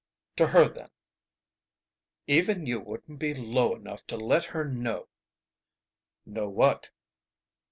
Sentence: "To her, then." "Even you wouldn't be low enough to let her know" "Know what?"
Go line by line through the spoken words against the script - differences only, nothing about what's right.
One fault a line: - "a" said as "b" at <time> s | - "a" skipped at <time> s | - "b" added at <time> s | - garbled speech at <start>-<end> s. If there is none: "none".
none